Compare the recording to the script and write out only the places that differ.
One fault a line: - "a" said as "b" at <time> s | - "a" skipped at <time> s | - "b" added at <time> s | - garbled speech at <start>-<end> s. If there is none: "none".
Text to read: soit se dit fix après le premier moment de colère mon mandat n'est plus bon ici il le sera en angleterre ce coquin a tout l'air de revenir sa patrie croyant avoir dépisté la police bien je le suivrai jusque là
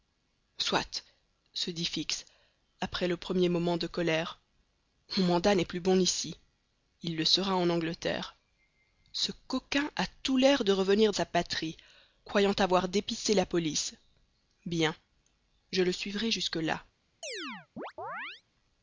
none